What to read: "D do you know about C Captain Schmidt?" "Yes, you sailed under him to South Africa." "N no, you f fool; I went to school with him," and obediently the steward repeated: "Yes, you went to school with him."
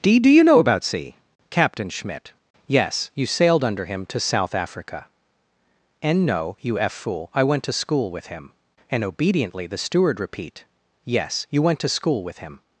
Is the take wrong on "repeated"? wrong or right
wrong